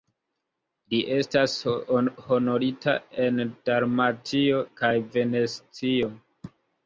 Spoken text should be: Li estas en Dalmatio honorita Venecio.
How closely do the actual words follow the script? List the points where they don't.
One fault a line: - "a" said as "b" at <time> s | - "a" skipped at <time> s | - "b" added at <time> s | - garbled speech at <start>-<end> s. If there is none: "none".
- "honorita" added at 2.3 s
- "honorita" said as "kaj" at 4.8 s